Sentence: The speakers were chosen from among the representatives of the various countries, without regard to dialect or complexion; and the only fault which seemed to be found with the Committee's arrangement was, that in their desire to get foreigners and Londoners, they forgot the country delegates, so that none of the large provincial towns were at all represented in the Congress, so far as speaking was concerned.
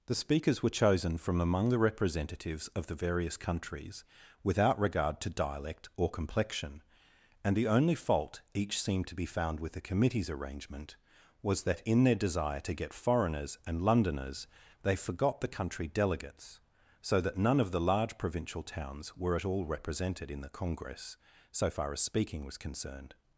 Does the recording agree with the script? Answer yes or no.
no